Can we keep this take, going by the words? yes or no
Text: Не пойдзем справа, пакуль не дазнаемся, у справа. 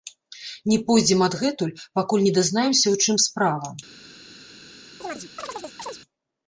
no